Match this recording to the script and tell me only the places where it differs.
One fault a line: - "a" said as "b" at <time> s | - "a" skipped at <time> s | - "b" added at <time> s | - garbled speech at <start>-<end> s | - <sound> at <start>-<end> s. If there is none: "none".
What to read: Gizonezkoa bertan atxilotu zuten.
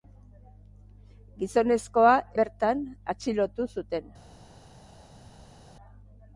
none